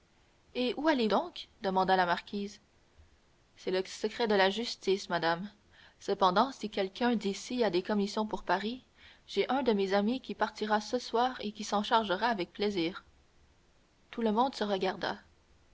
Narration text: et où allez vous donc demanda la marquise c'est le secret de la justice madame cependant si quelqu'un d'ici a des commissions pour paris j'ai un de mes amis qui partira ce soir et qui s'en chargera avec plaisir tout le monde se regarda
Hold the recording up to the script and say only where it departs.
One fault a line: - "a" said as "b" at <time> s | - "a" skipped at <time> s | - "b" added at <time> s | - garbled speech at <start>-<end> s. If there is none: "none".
- "vous" skipped at 1.1 s